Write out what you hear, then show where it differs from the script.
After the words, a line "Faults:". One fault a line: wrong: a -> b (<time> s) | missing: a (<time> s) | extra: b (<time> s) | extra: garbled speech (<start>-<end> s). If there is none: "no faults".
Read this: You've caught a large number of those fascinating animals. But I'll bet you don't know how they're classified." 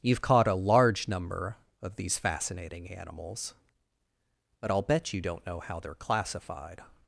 You've caught a large number of these fascinating animals. But I'll bet you don't know how they're classified."
Faults:
wrong: those -> these (1.9 s)